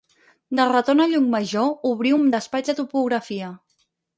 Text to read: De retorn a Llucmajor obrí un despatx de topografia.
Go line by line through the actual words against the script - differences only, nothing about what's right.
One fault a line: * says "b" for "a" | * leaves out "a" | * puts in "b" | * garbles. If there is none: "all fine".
all fine